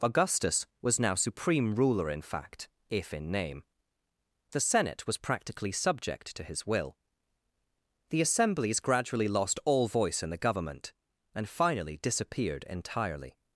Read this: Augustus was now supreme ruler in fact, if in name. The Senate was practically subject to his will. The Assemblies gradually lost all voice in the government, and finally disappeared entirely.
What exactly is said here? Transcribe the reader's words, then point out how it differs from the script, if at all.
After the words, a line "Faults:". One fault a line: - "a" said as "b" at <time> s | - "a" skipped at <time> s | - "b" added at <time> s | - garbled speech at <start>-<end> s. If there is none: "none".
Augustus was now supreme ruler in fact, if in name. The Senate was practically subject to his will. The Assemblies gradually lost all voice in the government, and finally disappeared entirely.
Faults:
none